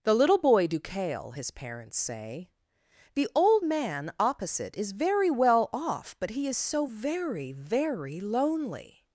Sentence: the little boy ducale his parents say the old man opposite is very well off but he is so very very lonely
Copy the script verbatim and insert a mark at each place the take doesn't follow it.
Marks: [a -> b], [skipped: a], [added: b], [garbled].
the little boy ducale his parents say the old man opposite is very well off but he is so very very lonely